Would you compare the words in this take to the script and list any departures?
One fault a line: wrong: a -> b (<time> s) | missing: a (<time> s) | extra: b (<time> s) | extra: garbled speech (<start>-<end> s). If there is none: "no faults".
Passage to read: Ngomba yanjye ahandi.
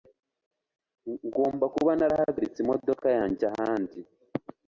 extra: kuba narahagaritse imodoka (1.8 s)